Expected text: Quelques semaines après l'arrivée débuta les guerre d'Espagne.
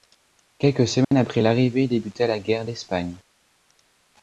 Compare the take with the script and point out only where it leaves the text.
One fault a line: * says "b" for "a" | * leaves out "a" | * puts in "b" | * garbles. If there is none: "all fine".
* says "la" for "les"